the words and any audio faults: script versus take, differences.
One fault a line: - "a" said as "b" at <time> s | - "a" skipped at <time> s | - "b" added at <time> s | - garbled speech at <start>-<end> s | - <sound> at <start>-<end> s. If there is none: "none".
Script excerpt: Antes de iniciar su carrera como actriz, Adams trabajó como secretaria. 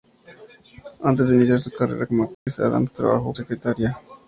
- dropout at 2.3-2.5 s
- "como" skipped at 3.3 s